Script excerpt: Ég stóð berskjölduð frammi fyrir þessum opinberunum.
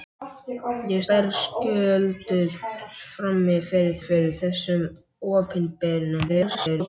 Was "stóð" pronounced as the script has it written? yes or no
no